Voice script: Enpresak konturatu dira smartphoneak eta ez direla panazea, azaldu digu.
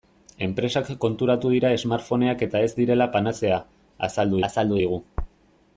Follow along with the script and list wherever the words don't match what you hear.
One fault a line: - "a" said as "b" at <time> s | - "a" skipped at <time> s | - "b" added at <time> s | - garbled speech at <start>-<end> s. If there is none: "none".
- "azaldu" added at 4.5 s